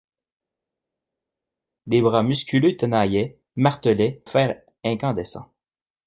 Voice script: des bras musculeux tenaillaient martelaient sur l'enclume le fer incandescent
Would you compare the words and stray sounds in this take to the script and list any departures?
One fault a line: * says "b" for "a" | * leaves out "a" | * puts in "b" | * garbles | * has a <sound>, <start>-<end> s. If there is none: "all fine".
* leaves out "sur l'enclume le"